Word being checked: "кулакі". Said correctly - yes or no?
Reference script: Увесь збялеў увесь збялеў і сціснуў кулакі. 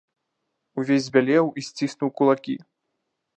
yes